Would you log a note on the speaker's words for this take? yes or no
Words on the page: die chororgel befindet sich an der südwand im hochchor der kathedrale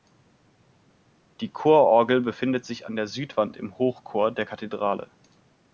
no